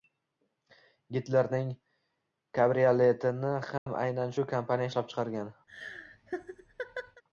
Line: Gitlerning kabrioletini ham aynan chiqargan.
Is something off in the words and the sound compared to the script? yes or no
yes